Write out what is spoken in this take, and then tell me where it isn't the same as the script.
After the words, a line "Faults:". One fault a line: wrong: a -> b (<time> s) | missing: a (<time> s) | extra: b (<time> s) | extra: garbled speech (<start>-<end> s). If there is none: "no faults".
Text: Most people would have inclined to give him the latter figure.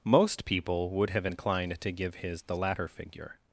Most people would have inclined to give his the latter figure.
Faults:
wrong: him -> his (2.2 s)